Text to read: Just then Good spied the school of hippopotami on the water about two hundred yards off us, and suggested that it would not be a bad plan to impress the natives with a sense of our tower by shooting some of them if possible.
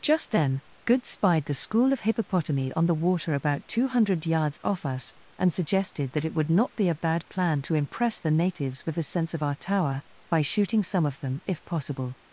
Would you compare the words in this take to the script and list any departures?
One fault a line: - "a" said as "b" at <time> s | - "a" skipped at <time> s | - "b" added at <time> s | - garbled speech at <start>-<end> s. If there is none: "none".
none